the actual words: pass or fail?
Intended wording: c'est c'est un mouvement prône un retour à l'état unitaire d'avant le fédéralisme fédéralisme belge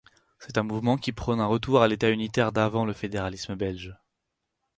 fail